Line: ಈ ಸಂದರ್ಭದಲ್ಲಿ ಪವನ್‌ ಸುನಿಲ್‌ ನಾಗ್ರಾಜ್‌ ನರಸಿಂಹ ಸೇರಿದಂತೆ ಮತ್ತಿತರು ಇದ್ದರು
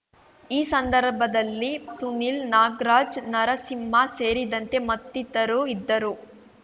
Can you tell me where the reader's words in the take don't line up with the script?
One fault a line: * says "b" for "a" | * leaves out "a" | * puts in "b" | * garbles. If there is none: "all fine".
* leaves out "ಪವನ್"